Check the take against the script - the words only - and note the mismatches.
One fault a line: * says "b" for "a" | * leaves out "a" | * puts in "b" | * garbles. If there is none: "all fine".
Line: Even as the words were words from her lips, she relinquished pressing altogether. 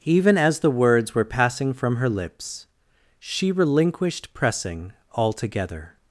* says "passing" for "words"